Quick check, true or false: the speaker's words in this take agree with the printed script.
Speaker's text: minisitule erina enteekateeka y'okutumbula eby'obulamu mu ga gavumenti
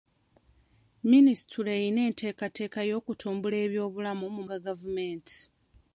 true